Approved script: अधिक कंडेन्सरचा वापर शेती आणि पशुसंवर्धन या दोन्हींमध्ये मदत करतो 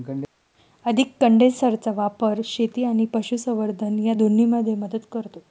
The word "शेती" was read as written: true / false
true